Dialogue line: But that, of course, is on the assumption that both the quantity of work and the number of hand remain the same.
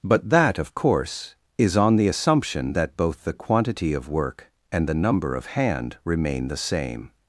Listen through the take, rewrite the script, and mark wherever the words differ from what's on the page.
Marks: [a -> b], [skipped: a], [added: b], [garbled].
But that, of course, is on the assumption that both the quantity of work and the number of hand remain the same.